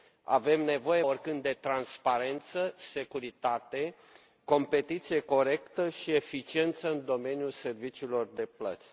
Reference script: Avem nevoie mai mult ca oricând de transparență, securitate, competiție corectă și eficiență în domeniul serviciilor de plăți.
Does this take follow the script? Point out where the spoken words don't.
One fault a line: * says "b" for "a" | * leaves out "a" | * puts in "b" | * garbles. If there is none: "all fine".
* leaves out "mai mult ca"